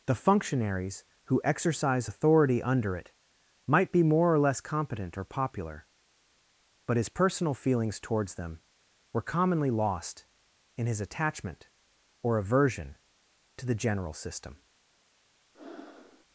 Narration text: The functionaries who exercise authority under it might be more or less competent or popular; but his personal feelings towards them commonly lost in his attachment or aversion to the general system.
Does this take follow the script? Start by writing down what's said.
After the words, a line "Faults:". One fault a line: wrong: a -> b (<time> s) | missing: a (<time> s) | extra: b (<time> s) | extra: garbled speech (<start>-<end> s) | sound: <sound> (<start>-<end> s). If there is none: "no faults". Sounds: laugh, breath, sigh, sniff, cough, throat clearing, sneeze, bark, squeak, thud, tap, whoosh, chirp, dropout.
The functionaries who exercise authority under it might be more or less competent or popular; but his personal feelings towards them were commonly lost in his attachment or aversion to the general system.
Faults:
extra: were (9.1 s)
sound: breath (15.5-16.2 s)